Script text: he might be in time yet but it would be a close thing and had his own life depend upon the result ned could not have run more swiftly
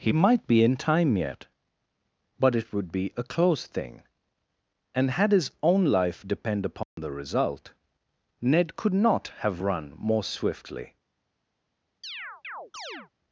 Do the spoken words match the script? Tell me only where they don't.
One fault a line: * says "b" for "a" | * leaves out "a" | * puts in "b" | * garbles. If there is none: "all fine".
all fine